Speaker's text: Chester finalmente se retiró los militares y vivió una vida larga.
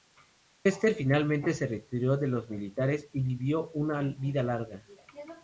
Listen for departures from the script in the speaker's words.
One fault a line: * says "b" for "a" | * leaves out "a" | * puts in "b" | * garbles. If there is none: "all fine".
* puts in "de"